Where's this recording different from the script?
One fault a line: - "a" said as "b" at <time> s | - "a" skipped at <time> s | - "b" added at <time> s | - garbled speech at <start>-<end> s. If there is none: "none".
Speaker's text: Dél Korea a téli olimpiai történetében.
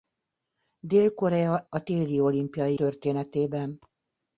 none